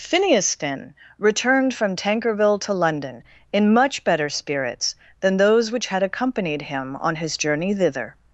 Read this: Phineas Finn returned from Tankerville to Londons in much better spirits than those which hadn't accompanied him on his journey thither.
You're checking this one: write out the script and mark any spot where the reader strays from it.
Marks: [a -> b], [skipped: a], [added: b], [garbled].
Phineas Finn returned from Tankerville to [Londons -> London] in much better spirits than those which [hadn't -> had] accompanied him on his journey thither.